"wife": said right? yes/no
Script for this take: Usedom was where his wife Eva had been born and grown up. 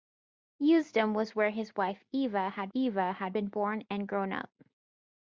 yes